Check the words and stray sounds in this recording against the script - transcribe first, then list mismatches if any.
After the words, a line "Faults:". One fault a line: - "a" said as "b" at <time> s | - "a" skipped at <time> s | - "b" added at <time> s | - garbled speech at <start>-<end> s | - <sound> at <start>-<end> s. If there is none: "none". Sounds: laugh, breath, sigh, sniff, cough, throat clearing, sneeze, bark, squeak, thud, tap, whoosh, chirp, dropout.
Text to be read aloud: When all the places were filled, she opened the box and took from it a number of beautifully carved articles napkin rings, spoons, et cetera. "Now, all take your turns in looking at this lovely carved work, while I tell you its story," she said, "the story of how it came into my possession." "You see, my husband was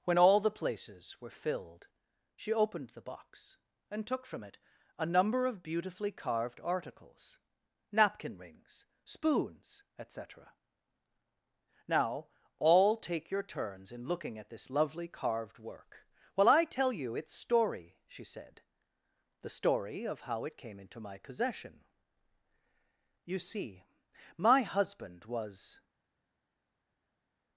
When all the places were filled, she opened the box and took from it a number of beautifully carved articles napkin rings, spoons, et cetera. "Now, all take your turns in looking at this lovely carved work, while I tell you its story," she said, "the story of how it came into my possession." "You see, my husband was
Faults:
none